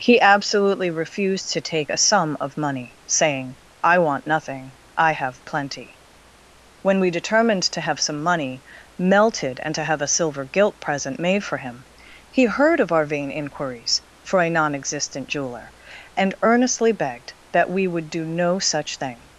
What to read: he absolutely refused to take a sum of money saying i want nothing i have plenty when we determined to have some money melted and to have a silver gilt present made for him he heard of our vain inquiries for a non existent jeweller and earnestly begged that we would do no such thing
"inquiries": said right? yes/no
yes